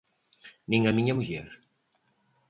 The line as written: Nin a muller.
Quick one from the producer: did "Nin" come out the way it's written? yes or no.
yes